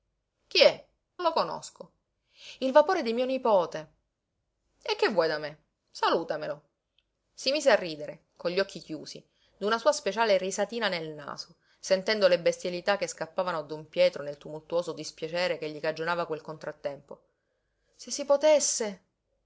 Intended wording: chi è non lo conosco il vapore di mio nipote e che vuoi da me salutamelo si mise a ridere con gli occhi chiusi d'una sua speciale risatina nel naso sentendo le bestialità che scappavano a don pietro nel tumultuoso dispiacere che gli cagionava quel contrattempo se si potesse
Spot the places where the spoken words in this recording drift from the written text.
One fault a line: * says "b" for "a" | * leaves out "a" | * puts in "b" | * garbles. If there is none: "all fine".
* leaves out "non"